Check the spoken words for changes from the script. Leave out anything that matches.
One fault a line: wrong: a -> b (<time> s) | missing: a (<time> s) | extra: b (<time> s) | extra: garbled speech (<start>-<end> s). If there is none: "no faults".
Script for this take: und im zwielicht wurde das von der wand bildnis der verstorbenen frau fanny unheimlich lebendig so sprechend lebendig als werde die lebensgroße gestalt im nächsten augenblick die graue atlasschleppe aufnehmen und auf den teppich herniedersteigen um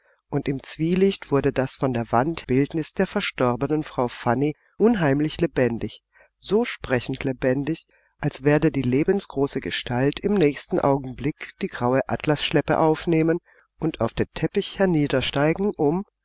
no faults